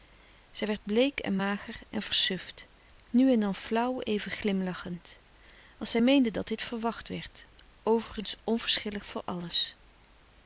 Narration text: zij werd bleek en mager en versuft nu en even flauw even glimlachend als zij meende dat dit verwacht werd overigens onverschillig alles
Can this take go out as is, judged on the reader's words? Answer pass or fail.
fail